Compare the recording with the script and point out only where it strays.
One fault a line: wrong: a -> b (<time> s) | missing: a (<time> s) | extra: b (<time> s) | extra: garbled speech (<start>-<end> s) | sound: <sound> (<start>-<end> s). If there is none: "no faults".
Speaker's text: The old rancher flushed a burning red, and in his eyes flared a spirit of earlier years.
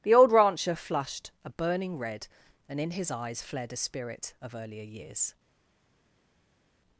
no faults